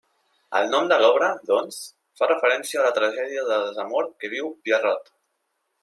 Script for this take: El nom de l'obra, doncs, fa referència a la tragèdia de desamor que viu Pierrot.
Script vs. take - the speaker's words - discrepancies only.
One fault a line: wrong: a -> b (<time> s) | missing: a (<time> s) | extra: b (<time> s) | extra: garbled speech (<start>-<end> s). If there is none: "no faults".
no faults